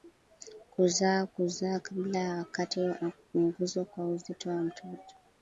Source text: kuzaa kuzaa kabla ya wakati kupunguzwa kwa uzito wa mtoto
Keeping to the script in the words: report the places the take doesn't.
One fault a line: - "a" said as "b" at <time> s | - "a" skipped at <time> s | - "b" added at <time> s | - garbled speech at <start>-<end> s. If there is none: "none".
- "na" added at 2.8 s